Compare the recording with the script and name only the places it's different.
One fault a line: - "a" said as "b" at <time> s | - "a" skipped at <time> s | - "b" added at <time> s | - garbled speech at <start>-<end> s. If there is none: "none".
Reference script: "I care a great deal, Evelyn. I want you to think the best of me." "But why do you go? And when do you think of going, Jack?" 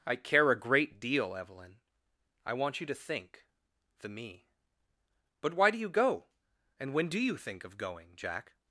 - "best of" skipped at 4.1 s